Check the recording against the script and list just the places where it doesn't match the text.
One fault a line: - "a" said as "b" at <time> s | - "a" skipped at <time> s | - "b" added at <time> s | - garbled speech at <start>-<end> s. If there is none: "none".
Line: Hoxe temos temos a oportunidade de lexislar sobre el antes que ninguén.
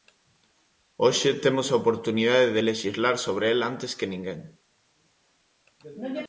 - "temos" skipped at 1.7 s